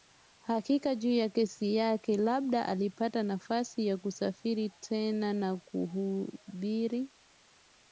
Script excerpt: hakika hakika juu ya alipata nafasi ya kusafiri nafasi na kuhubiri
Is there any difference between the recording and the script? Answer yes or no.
yes